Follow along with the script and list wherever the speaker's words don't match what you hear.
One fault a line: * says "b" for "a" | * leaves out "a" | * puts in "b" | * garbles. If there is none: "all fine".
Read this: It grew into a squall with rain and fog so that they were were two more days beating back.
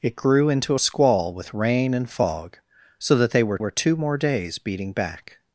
all fine